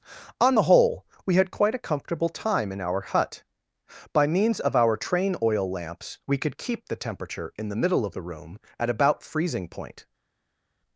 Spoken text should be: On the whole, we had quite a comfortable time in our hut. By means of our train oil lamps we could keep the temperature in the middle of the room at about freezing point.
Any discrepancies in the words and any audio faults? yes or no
no